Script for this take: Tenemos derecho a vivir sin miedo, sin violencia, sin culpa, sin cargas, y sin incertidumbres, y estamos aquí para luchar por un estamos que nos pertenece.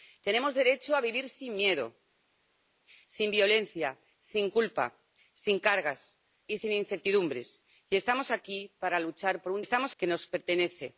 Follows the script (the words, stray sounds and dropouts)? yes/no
yes